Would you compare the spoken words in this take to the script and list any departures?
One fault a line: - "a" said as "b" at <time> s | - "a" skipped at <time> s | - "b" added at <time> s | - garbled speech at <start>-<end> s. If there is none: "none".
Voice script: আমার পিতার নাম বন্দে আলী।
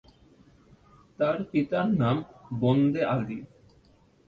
- "আমার" said as "তার" at 1.2 s